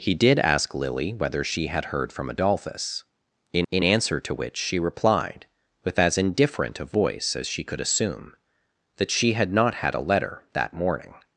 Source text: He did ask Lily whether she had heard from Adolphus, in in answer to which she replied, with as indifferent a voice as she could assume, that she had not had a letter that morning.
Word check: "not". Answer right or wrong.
right